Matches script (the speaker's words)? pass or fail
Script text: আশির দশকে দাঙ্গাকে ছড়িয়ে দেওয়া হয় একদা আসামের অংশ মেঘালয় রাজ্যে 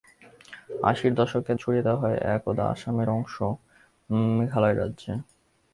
fail